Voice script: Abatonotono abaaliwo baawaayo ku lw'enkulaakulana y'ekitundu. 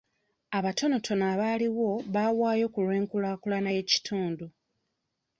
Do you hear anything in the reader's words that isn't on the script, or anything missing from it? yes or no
no